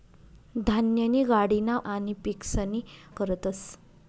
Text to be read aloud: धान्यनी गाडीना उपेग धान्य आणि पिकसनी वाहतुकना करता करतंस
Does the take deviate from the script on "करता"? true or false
true